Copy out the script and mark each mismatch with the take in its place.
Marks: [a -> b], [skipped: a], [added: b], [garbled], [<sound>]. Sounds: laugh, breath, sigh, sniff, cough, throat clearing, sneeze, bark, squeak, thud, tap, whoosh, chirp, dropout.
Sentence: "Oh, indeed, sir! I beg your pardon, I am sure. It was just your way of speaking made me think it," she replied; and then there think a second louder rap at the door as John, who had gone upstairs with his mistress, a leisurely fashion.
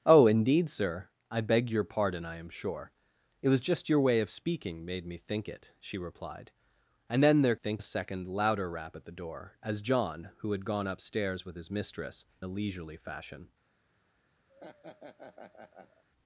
"Oh, indeed, sir! I beg your pardon, I am sure. It was just your way of speaking made me think it," she replied; and then there think a second louder rap at the door as John, who had gone upstairs with his mistress, a leisurely fashion. [laugh]